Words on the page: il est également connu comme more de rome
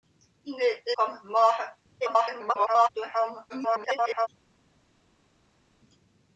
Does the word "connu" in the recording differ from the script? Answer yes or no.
yes